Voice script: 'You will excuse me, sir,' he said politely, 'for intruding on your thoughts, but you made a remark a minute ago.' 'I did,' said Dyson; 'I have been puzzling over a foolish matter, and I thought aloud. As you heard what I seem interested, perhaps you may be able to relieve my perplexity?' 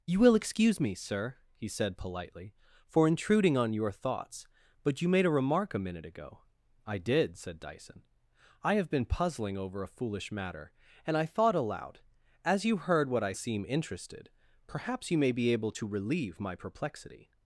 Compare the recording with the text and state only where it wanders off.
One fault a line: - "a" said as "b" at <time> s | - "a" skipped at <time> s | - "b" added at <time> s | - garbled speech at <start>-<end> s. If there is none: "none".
none